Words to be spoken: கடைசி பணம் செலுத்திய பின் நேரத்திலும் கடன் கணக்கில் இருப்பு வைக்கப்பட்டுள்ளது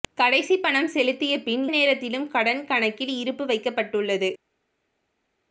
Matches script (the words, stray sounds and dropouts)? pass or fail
pass